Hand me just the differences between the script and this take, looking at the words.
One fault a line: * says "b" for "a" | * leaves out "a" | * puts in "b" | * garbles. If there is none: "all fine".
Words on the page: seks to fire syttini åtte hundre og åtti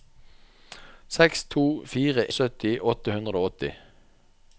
all fine